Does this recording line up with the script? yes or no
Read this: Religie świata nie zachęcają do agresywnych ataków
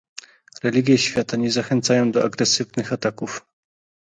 yes